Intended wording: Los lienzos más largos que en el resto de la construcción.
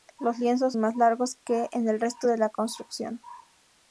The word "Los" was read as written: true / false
true